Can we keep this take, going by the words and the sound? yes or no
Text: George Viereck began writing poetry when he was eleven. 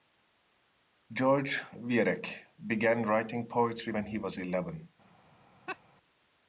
no